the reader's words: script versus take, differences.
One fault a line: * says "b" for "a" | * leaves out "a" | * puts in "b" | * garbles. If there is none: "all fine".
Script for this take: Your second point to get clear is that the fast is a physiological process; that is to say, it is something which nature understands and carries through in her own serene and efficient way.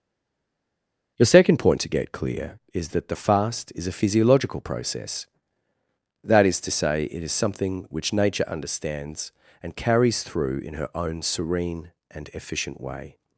all fine